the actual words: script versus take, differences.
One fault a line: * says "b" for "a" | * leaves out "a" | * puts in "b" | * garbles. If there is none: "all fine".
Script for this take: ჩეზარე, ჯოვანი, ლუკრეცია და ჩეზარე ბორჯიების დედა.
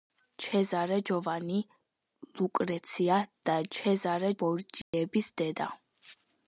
all fine